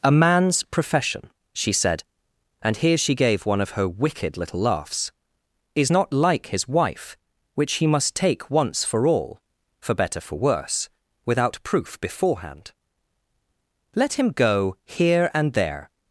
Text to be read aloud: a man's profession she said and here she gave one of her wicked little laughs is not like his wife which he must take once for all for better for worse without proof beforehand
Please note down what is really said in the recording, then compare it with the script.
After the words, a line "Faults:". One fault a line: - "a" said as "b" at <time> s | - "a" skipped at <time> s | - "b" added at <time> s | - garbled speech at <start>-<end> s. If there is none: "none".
a man's profession she said and here she gave one of her wicked little laughs is not like his wife which he must take once for all for better for worse without proof beforehand let him go here and there
Faults:
- "let him go here and there" added at 13.9 s